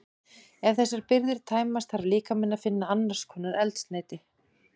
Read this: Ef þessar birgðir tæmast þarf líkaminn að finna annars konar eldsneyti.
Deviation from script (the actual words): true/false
false